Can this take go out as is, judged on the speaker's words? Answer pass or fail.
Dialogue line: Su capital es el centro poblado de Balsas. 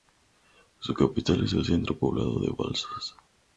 pass